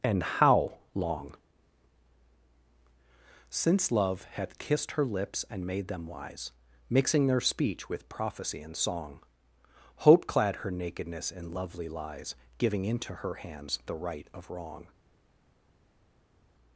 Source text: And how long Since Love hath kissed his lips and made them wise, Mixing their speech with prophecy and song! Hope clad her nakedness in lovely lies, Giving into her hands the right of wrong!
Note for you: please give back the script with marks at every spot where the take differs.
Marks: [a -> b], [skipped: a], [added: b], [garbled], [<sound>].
And how long Since Love hath kissed [his -> her] lips and made them wise, Mixing their speech with prophecy and song! Hope clad her nakedness in lovely lies, Giving into her hands the right of wrong!